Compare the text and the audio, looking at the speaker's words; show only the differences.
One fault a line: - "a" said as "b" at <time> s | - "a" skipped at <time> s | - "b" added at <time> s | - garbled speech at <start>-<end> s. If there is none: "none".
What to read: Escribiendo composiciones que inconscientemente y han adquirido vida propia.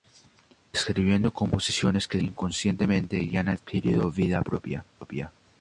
none